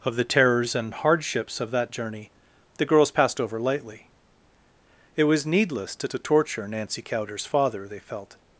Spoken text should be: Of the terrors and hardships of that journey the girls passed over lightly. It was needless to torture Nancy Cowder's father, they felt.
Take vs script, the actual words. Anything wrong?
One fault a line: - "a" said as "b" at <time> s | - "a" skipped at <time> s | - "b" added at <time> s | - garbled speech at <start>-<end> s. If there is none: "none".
- "to" added at 6.1 s